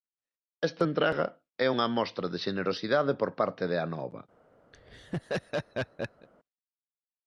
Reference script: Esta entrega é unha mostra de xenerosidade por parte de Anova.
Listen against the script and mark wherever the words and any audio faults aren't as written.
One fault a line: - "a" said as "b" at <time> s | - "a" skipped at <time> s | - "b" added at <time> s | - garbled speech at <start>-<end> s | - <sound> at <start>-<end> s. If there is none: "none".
- laugh at 4.7-6.3 s